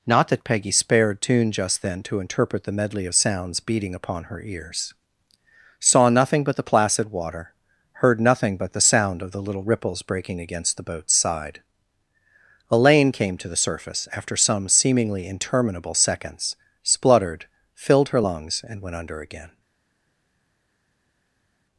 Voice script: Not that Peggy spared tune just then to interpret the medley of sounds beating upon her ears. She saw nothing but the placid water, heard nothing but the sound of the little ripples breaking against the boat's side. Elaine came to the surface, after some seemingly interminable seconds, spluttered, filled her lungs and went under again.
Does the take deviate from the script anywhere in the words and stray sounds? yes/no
yes